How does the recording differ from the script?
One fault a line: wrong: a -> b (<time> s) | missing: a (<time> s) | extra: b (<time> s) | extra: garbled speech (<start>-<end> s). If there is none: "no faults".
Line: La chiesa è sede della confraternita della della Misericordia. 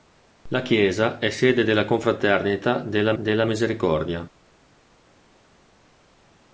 no faults